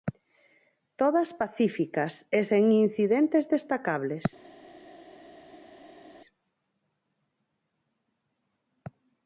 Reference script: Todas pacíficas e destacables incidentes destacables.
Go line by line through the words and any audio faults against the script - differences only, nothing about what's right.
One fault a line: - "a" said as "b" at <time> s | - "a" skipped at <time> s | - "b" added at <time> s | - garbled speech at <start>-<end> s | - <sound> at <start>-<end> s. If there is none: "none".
- "destacables" said as "sen" at 2.5 s